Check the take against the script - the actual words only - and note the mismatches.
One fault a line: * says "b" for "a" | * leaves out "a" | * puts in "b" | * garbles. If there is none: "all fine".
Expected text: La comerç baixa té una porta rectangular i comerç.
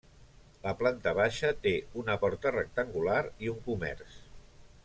* says "planta" for "comerç"
* puts in "un"